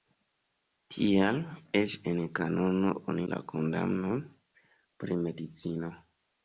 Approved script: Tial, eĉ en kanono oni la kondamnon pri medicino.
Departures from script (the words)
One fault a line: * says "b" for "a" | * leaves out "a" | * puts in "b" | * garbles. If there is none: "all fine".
all fine